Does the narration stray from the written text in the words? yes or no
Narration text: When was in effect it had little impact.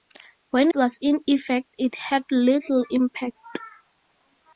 no